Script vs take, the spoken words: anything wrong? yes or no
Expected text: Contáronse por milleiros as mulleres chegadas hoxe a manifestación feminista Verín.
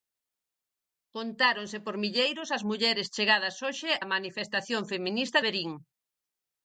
no